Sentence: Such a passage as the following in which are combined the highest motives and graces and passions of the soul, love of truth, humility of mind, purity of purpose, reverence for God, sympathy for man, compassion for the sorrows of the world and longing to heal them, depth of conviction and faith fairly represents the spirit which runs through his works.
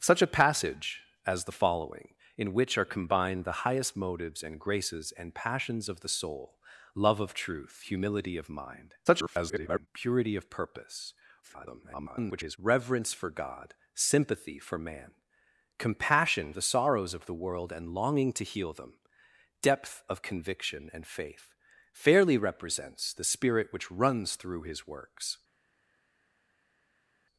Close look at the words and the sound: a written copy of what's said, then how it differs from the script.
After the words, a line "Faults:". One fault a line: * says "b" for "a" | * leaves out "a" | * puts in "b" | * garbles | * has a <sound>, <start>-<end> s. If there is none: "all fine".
Such a passage as the following in which are combined the highest motives and graces and passions of the soul, love of truth, humility of mind, [garbled] purity of purpose, [garbled] reverence for God, sympathy for man, compassion the sorrows of the world and longing to heal them, depth of conviction and faith fairly represents the spirit which runs through his works.
Faults:
* garbles
* garbles
* leaves out "for"